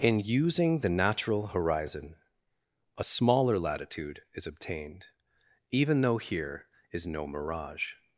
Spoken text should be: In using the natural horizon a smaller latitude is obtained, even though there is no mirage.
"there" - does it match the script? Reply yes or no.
no